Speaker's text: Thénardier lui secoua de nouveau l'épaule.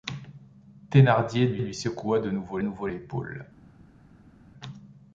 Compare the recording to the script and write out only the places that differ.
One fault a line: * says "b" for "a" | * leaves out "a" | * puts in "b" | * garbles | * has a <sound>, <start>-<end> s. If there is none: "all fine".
* puts in "lui"
* puts in "nouveau"